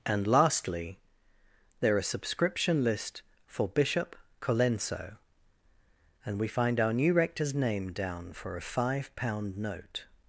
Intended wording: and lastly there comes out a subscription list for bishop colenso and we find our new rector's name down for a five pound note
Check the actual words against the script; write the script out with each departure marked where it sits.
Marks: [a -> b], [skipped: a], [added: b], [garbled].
and lastly there [skipped: comes out] a subscription list for bishop colenso and we find our new rector's name down for a five pound note